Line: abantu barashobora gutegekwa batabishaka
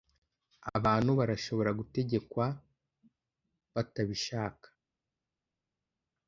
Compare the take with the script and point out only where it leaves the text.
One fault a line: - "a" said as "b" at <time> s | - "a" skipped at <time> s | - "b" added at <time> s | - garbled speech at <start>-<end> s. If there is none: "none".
none